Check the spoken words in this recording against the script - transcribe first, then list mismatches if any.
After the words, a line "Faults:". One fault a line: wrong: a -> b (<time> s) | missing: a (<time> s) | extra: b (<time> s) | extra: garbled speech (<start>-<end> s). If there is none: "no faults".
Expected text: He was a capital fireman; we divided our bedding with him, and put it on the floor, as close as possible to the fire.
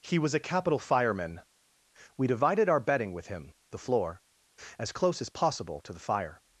He was a capital fireman; we divided our bedding with him, the floor, as close as possible to the fire.
Faults:
missing: and put it on (3.5 s)